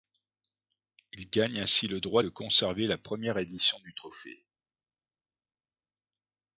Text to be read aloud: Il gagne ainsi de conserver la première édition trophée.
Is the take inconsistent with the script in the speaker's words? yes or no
yes